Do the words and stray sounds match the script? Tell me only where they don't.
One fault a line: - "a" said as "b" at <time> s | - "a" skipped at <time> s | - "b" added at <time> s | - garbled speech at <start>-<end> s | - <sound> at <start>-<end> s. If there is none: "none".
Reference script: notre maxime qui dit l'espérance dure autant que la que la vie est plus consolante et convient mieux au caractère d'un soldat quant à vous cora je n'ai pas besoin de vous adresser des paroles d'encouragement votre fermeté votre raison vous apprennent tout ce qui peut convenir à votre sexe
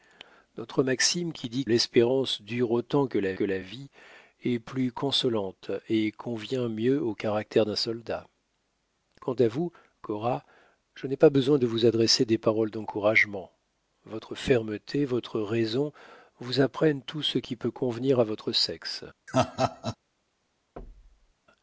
- laugh at 19.3-20.0 s
- thud at 20.8-21.3 s